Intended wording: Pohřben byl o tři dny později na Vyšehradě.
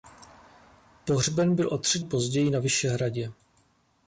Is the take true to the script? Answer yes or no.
no